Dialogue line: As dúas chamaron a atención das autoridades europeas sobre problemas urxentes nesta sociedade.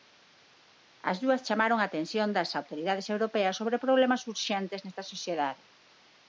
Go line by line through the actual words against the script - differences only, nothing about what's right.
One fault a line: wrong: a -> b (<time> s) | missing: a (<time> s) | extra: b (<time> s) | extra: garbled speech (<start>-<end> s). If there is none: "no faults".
no faults